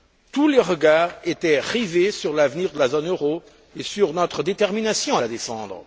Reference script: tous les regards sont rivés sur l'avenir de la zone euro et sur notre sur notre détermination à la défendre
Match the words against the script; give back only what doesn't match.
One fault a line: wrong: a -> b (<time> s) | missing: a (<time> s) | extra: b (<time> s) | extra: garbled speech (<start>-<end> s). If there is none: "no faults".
wrong: sont -> étaient (1.2 s)
missing: sur notre (4.4 s)